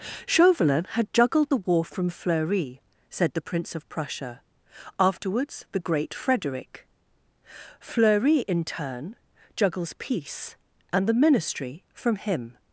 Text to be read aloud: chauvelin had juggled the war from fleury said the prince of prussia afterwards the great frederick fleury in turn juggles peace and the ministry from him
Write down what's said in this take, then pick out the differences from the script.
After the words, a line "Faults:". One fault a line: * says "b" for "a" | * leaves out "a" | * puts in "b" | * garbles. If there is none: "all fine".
chauvelin had juggled the war from fleury said the prince of prussia afterwards the great frederick fleury in turn juggles peace and the ministry from him
Faults:
all fine